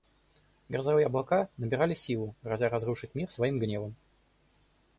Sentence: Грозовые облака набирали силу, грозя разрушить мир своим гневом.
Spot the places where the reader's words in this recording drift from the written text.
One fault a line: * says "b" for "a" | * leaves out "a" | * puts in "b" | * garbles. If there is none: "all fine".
all fine